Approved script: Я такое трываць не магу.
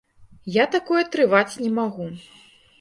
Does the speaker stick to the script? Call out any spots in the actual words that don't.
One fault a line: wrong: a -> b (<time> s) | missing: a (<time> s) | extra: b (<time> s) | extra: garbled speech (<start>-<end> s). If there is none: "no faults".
no faults